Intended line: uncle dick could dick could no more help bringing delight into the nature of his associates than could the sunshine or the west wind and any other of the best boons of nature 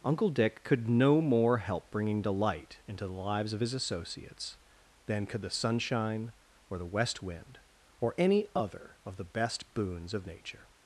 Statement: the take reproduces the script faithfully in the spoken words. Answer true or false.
false